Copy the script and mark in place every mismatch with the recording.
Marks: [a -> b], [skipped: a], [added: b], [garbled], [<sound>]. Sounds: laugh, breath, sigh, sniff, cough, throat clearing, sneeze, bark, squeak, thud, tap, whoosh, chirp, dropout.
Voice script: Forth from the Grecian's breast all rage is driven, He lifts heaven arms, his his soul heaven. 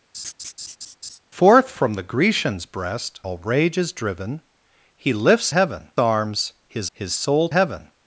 [laugh] Forth from the Grecian's breast all rage is driven, He lifts heaven arms, his his soul heaven.